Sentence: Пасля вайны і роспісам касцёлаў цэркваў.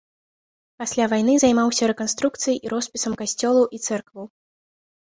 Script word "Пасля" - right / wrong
right